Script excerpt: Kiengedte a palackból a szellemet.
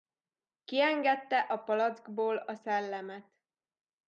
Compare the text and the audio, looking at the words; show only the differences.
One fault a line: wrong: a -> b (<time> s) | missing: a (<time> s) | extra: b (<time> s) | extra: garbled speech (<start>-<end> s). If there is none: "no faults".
no faults